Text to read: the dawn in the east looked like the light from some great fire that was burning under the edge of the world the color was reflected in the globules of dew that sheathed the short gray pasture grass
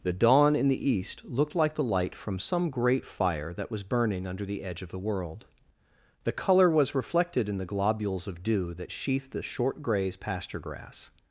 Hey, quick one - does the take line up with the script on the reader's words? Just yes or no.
no